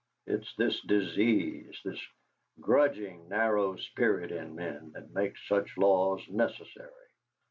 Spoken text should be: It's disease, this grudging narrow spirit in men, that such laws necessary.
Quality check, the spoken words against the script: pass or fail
fail